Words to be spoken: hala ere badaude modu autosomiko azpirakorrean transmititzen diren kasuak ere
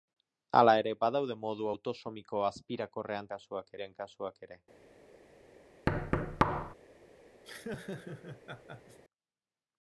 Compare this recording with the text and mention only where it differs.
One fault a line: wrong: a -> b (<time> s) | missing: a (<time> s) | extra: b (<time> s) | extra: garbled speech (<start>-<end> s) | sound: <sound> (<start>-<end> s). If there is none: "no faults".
wrong: transmititzen -> kasuak (3.3 s)
sound: thud (5.9-6.7 s)
sound: laugh (7.4-9.0 s)